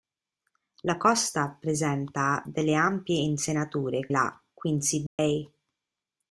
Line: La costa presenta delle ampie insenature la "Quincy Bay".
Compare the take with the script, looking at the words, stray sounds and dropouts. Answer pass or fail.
fail